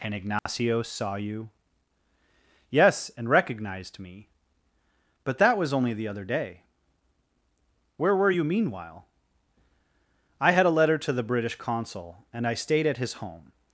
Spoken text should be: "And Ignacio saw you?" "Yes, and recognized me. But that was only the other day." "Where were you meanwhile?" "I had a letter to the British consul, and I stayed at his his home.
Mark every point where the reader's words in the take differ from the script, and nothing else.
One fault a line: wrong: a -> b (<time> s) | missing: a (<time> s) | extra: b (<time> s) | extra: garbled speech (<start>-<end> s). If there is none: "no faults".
missing: his (13.2 s)